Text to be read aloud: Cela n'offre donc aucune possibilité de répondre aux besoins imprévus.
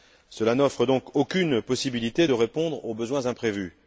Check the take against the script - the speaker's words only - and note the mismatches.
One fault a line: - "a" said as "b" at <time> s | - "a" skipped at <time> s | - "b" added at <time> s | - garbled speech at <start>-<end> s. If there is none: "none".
none